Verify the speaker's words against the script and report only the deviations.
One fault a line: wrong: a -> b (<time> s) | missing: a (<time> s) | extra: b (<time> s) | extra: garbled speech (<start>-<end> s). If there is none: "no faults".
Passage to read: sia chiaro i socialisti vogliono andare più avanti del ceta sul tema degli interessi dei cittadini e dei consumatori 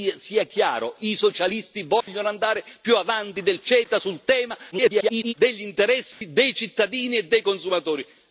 extra: garbled speech (4.7-5.3 s)